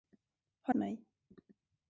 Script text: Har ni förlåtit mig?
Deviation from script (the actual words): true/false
true